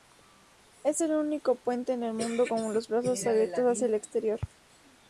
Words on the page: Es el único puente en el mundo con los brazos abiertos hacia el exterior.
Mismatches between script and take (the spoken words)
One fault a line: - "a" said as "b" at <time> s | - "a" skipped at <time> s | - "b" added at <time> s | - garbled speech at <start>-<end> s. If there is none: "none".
none